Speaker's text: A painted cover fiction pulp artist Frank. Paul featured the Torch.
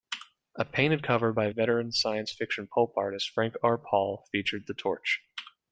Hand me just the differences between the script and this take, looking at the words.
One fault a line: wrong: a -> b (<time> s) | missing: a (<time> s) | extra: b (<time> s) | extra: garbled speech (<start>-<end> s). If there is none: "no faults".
extra: by veteran science (1.3 s)
extra: R (3.6 s)